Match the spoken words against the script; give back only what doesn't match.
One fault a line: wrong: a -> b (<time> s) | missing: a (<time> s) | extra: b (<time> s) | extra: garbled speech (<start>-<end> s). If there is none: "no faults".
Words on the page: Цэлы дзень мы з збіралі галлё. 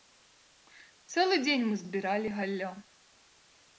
no faults